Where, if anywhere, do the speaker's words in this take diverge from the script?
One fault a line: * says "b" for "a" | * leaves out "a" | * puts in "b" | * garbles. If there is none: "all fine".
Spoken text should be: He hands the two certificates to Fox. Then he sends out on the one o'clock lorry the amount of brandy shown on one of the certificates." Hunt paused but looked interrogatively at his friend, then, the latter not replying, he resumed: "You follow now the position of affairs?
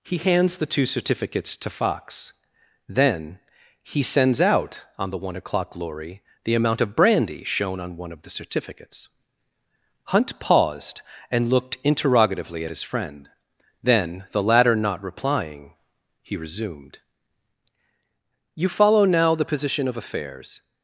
* says "and" for "but"